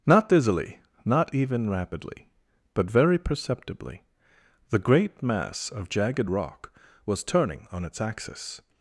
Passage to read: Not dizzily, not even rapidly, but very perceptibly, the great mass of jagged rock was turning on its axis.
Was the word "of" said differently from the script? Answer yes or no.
no